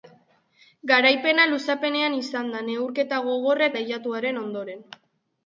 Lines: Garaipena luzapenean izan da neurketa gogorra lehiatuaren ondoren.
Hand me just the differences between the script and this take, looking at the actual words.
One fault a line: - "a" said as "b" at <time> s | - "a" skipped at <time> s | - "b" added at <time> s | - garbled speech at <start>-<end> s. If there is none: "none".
none